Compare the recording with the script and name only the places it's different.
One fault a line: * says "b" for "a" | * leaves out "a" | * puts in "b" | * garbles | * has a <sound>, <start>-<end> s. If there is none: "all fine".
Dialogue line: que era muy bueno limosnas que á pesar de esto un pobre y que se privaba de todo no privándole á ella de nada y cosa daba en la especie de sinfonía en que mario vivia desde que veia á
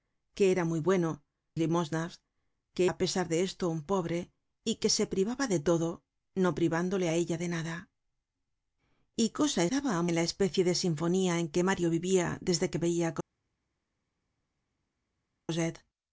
all fine